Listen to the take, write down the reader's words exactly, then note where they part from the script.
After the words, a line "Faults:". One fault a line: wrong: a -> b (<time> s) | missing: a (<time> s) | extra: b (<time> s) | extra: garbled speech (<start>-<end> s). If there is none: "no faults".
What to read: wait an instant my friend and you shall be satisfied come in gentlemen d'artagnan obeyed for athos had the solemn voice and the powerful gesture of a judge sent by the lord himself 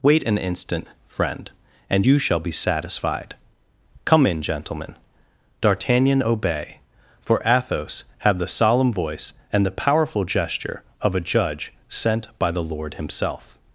wait an instant friend and you shall be satisfied come in gentlemen d'artagnan obey for athos had the solemn voice and the powerful gesture of a judge sent by the lord himself
Faults:
missing: my (0.9 s)
wrong: obeyed -> obey (6.2 s)